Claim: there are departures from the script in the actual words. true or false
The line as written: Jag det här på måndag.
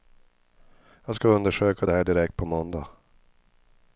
true